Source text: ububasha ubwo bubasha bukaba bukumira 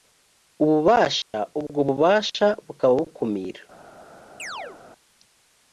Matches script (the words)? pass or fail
pass